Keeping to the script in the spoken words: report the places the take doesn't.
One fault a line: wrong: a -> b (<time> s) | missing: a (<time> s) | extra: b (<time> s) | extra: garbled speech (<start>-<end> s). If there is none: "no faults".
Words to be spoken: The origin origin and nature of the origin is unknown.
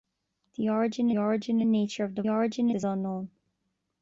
no faults